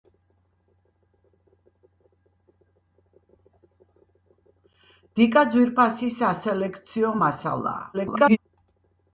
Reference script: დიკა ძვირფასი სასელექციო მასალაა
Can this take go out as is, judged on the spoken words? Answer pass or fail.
fail